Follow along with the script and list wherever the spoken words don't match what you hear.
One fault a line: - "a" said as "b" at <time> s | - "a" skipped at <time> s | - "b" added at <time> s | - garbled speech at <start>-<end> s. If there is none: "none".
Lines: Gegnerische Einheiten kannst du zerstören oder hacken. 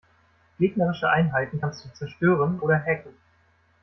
none